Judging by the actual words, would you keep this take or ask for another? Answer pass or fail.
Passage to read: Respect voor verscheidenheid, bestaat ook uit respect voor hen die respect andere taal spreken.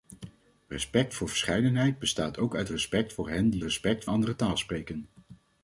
pass